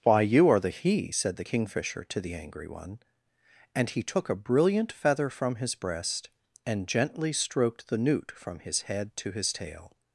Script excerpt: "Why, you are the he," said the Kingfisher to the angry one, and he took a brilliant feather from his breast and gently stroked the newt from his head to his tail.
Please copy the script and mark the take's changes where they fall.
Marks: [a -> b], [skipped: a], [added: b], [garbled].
"Why, you are the he," said the Kingfisher to the angry one, and he took a brilliant feather from his breast and gently stroked the newt from his head to his tail.